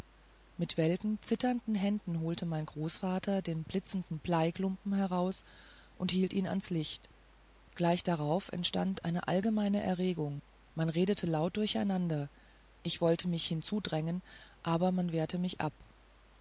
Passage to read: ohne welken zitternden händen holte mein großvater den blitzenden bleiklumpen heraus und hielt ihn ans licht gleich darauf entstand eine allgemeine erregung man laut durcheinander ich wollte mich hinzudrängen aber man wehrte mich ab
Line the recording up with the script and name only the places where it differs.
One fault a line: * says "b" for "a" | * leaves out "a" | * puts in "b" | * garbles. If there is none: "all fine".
* says "mit" for "ohne"
* puts in "redete"